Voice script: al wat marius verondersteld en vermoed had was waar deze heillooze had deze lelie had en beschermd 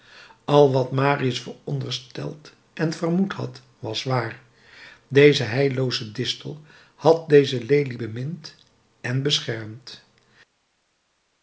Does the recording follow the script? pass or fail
fail